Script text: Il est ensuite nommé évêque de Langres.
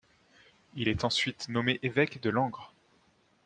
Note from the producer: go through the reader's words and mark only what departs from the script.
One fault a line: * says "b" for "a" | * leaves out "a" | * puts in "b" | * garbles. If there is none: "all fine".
all fine